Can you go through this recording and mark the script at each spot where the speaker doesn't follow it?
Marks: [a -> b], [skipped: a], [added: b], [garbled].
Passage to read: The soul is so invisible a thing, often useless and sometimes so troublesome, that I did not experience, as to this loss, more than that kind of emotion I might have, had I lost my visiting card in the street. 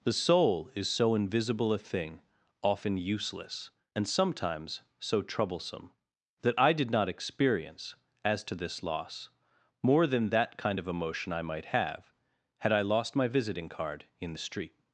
The soul is so invisible a thing, often useless and sometimes so troublesome, that I did not experience, as to this loss, more than that kind of emotion I might have, had I lost my visiting card in the street.